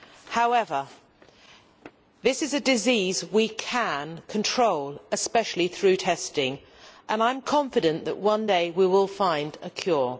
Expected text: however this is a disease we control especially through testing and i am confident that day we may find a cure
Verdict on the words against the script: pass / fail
fail